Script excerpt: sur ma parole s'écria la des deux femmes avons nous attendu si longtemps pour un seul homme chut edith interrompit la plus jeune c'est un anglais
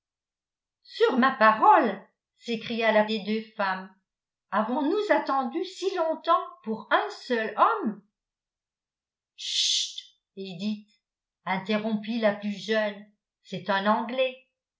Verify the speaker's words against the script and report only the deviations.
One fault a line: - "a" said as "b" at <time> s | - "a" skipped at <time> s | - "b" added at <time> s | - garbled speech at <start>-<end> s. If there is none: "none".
none